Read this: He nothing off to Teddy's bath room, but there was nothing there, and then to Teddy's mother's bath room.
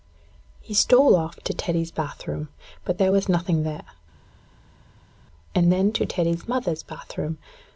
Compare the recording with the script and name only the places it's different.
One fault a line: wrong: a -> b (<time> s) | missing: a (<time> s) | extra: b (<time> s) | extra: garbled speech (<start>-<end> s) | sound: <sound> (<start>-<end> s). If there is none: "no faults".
wrong: nothing -> stole (0.7 s)